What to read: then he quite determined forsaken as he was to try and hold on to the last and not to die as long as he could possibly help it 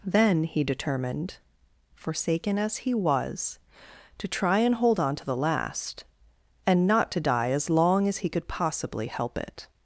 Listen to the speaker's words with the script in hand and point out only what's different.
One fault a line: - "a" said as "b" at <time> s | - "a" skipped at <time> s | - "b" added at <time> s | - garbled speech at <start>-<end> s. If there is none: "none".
- "quite" skipped at 0.6 s